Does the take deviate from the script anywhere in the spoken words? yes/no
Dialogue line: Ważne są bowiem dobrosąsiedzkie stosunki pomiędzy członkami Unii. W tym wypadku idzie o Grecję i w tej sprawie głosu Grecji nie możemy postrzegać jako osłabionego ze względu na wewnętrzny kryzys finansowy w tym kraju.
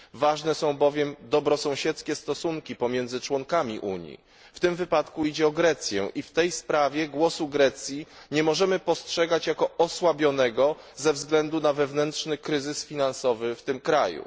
no